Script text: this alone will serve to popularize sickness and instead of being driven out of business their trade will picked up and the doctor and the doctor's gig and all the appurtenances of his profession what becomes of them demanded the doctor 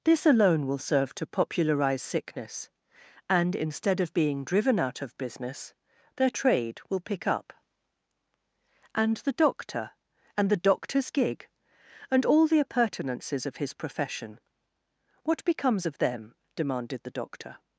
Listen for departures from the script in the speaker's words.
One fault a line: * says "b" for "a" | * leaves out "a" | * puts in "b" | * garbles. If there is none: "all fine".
* says "pick" for "picked"